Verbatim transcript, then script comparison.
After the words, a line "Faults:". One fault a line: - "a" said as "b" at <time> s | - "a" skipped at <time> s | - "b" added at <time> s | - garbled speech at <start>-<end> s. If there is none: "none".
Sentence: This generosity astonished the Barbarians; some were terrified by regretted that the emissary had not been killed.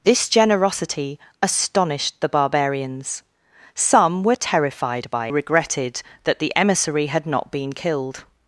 This generosity astonished the Barbarians; some were terrified by regretted that the emissary had not been killed.
Faults:
none